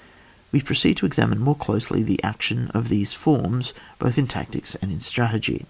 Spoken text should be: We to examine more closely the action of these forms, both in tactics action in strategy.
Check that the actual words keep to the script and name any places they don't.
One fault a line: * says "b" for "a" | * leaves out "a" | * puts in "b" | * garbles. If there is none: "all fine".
* puts in "proceed"
* says "and" for "action"